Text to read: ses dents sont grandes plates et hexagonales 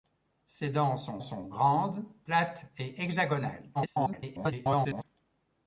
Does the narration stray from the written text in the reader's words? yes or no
yes